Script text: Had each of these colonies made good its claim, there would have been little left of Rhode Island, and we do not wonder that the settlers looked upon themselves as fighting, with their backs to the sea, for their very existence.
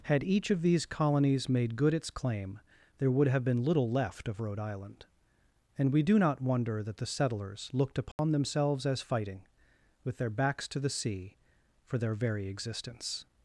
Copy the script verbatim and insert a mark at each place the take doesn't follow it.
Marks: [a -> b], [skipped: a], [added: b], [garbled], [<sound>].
Had each of these colonies made good its claim, there would have been little left of Rhode Island, and we do not wonder that the settlers looked upon [dropout] themselves as fighting, with their backs to the sea, for their very existence.